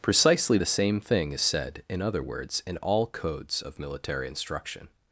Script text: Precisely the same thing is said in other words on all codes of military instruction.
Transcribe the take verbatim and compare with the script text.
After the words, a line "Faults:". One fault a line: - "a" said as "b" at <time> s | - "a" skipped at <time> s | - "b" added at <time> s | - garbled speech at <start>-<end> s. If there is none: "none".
Precisely the same thing is said in other words in all codes of military instruction.
Faults:
- "on" said as "in" at 2.6 s